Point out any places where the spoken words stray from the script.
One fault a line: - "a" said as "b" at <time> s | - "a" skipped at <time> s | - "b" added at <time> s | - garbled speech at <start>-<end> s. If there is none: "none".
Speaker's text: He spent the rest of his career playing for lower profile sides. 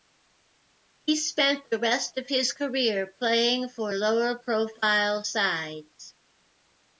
none